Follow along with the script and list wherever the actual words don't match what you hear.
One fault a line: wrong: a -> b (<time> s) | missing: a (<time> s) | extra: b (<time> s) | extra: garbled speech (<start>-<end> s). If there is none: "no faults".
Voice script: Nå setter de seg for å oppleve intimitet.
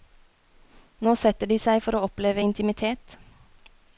no faults